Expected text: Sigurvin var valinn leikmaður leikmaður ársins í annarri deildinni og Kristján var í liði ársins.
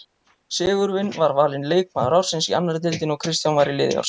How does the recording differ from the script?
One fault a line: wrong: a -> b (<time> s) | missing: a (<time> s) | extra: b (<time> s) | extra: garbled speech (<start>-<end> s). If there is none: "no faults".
missing: leikmaður (2.2 s)